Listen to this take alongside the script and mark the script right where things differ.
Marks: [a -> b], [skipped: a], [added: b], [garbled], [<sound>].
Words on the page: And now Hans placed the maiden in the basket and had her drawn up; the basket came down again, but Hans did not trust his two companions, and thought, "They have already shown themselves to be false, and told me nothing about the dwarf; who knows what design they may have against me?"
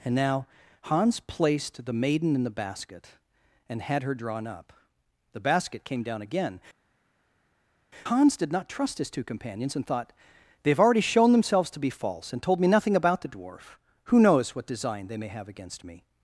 And now Hans placed the maiden in the basket and had her drawn up; the basket came down again, [skipped: but] Hans did not trust his two companions, and thought, "They have already shown themselves to be false, and told me nothing about the dwarf; who knows what design they may have against me?"